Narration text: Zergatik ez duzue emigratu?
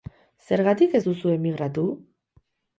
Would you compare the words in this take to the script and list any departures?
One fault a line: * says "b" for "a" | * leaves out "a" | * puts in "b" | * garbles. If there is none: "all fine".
all fine